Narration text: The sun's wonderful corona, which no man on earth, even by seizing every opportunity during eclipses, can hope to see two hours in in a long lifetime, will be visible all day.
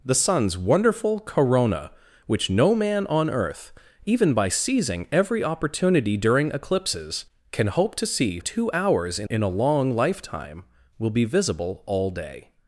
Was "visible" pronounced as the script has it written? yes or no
yes